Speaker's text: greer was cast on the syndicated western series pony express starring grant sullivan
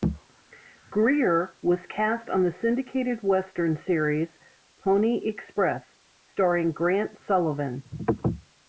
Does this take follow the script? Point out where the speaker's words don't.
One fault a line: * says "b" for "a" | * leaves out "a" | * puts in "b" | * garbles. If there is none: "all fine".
all fine